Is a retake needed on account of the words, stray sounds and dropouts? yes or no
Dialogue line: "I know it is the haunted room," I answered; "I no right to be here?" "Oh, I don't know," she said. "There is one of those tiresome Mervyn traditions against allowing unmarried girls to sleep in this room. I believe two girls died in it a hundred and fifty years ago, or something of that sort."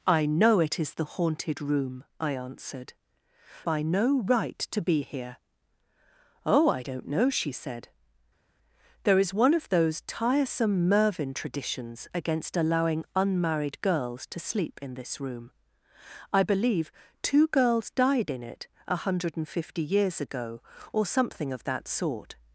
no